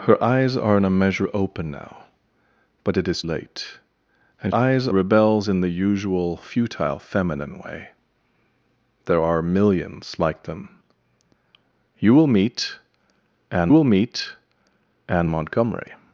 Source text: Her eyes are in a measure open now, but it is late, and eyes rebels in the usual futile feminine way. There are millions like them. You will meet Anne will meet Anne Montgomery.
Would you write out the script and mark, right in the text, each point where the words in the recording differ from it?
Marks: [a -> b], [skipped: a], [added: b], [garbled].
Her eyes are in a measure open now, but it is late, and eyes rebels in the usual futile feminine way. There are millions like them. You will meet Anne will meet Anne Montgomery.